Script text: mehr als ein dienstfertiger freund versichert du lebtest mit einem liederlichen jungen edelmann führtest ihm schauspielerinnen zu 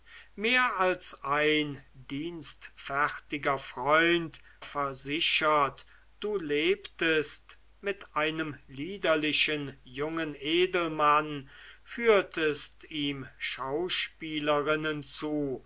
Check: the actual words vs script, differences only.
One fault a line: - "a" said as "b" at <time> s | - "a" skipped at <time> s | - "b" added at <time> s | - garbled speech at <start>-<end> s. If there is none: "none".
none